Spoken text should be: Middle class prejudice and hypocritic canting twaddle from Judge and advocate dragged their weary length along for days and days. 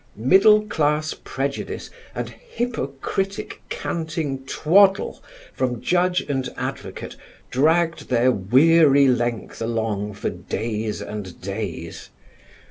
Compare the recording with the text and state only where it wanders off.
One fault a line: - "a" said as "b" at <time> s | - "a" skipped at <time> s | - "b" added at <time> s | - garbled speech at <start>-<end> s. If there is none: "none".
none